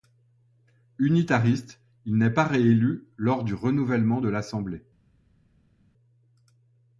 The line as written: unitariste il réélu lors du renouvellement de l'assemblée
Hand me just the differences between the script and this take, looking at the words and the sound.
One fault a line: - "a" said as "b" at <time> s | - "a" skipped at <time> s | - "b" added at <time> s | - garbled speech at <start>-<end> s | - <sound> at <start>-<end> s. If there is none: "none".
- "n'est pas" added at 2.2 s